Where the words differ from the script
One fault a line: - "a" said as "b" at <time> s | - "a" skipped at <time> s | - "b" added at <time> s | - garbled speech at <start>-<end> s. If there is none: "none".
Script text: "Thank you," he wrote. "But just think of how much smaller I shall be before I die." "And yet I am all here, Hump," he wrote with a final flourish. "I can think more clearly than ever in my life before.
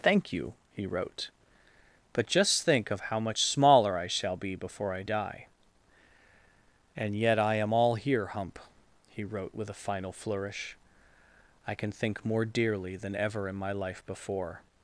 - "clearly" said as "dearly" at 12.5 s